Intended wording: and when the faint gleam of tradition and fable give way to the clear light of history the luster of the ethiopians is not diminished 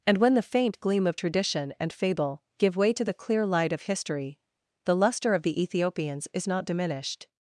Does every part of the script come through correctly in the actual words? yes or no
yes